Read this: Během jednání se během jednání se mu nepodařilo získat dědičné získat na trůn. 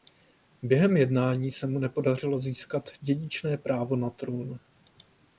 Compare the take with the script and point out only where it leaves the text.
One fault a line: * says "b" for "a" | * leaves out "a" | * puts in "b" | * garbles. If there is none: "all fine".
* leaves out "během jednání se"
* says "právo" for "získat"